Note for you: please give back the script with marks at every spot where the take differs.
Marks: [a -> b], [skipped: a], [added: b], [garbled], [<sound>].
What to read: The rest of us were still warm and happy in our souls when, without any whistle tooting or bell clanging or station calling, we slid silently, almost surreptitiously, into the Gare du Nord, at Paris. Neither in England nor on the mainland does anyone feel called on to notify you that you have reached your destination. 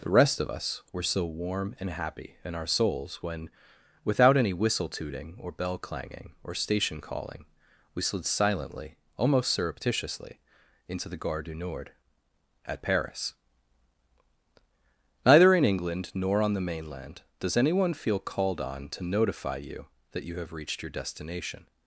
The rest of us were [still -> so] warm and happy in our souls when, without any whistle tooting or bell clanging or station calling, we slid silently, almost surreptitiously, into the Gare du Nord, at Paris. Neither in England nor on the mainland does anyone feel called on to notify you that you have reached your destination.